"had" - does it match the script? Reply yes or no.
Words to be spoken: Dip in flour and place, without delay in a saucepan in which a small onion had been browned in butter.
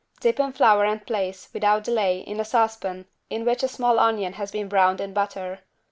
no